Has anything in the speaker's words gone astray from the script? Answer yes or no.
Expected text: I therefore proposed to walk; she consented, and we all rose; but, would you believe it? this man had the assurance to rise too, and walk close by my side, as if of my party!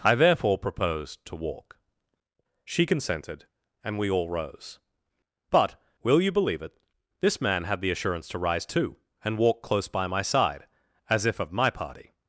yes